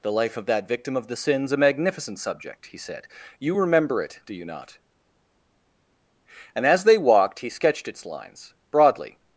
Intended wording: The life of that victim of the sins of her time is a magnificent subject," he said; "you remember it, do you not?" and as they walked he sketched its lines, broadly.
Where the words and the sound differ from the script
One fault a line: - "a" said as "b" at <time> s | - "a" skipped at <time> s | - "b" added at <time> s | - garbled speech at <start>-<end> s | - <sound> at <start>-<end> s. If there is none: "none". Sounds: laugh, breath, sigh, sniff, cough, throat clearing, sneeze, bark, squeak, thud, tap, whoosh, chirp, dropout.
- "of her time is" skipped at 1.5 s